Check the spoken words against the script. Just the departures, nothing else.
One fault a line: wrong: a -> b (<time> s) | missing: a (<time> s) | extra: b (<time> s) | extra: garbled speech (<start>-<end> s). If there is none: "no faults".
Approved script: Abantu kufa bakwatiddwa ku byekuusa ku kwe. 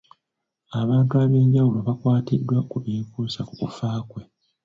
wrong: kufa -> ab'enjawulo (1.2 s)
extra: kufa (3.6 s)